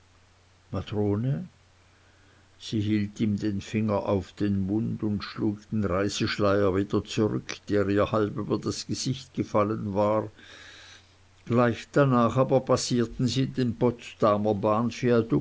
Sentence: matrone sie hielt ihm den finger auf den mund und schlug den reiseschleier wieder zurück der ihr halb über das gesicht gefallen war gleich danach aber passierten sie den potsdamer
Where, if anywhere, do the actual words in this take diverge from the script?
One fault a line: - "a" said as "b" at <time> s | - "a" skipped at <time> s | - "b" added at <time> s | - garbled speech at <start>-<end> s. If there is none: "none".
none